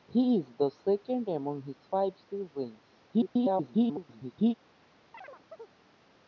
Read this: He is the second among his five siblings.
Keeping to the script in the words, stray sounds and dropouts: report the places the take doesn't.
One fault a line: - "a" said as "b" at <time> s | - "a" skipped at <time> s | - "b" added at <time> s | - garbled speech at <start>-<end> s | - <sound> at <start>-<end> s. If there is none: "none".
- garbled speech at 3.1-4.5 s
- chirp at 5.1-5.8 s